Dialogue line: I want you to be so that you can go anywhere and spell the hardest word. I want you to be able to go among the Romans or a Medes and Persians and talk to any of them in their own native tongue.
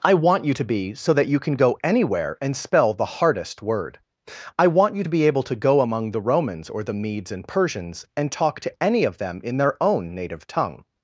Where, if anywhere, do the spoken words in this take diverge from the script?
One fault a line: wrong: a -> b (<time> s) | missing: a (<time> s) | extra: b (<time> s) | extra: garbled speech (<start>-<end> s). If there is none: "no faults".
wrong: a -> the (6.8 s)